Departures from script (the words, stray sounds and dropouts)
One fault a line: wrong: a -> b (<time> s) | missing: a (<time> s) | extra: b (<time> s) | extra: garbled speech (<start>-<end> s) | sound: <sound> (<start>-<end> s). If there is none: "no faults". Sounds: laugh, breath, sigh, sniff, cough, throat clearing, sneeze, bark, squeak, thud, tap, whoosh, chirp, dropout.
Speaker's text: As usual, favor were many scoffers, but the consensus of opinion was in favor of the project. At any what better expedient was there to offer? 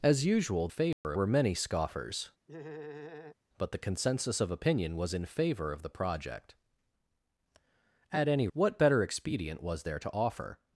sound: dropout (0.9-1.0 s)
sound: laugh (2.5-3.4 s)